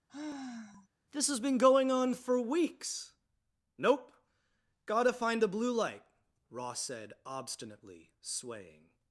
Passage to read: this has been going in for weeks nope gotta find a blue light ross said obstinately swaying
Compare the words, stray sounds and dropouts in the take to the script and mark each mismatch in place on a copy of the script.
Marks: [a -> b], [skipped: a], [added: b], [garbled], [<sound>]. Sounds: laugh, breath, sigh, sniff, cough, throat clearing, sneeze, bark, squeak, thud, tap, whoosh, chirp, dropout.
[sigh] this has been going [in -> on] for weeks nope gotta find a blue light ross said obstinately swaying